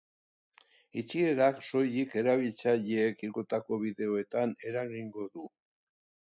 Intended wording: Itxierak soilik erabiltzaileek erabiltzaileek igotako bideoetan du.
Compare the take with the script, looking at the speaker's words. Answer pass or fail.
fail